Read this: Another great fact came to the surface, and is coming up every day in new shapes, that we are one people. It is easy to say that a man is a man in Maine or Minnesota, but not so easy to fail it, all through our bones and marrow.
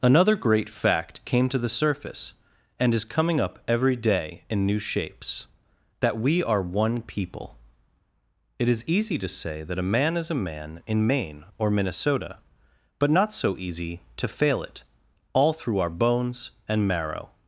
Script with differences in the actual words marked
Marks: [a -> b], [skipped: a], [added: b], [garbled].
Another great fact came to the surface, and is coming up every day in new shapes, that we are one people. It is easy to say that a man is a man in Maine or Minnesota, but not so easy to fail it, all through our bones and marrow.